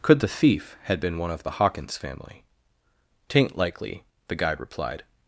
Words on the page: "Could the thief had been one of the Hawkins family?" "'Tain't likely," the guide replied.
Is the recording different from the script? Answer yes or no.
no